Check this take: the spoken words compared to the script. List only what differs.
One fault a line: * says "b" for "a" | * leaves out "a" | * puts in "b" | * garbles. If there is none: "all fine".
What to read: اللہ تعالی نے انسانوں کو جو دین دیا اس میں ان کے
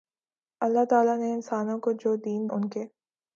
* leaves out "دیا اس میں"